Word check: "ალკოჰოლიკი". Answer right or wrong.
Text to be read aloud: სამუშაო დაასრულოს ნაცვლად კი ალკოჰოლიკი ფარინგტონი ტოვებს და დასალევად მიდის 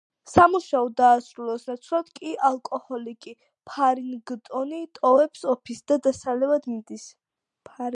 right